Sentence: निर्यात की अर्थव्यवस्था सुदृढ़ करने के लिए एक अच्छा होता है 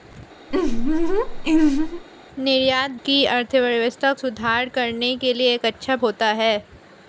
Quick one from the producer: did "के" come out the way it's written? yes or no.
yes